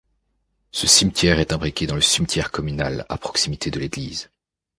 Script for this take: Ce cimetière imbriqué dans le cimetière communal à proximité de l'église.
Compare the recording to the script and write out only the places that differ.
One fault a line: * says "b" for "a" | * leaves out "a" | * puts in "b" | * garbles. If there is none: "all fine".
* puts in "est"